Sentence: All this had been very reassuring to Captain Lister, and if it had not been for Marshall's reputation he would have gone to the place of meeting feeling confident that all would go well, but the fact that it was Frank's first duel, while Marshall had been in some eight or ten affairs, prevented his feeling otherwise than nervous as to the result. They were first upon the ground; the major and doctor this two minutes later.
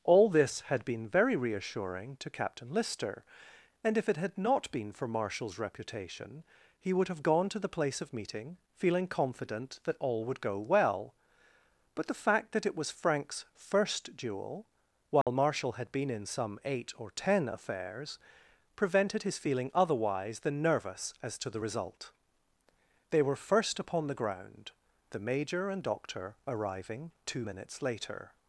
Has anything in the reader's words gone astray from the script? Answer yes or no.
yes